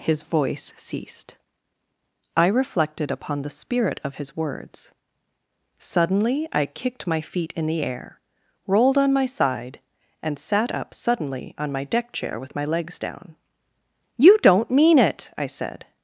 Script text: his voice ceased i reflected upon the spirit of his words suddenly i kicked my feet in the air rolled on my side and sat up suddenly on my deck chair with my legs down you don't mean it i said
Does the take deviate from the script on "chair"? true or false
false